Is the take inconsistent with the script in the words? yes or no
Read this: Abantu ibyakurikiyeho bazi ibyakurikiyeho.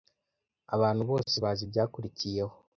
yes